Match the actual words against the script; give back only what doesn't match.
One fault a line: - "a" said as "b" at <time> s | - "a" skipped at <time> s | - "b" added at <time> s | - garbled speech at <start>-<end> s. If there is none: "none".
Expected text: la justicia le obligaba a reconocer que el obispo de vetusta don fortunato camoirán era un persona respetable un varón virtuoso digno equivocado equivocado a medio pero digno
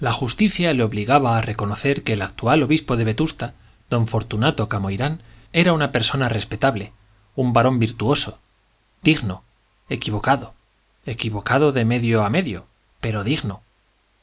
- "actual" added at 2.2 s
- "un" said as "una" at 5.7 s
- "de medio" added at 11.7 s